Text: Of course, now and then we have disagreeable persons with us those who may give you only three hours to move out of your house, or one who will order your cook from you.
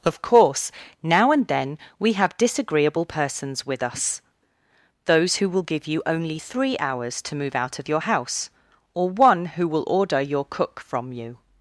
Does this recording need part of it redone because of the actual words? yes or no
yes